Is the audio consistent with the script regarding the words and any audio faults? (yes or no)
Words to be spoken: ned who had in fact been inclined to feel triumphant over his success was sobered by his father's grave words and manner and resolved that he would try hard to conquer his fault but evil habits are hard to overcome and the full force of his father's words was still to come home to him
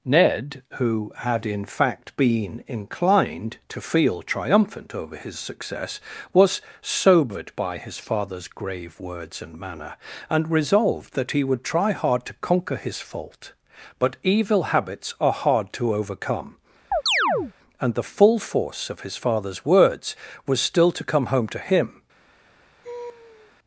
no